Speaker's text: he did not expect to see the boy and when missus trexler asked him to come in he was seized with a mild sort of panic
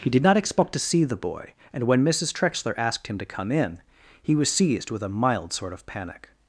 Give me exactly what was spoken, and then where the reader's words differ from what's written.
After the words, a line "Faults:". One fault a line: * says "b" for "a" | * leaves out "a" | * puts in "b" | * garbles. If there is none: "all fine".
he did not expect to see the boy and when missus trexler asked him to come in he was seized with a mild sort of panic
Faults:
all fine